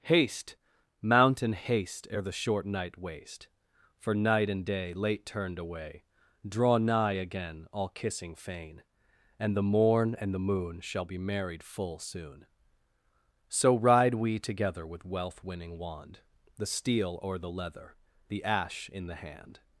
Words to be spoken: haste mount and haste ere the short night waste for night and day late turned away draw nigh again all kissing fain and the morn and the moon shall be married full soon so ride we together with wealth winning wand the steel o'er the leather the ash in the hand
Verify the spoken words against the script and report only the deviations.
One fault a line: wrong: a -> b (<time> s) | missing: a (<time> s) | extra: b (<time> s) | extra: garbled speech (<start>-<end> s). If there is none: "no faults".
no faults